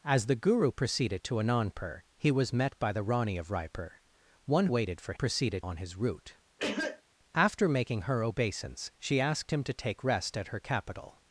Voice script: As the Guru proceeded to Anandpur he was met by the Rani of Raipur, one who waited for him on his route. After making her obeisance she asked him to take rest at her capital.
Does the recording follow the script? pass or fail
fail